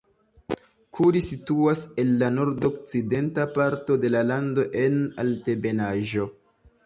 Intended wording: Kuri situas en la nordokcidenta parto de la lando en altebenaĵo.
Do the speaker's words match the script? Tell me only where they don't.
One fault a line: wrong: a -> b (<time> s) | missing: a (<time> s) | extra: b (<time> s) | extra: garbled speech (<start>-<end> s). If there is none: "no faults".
no faults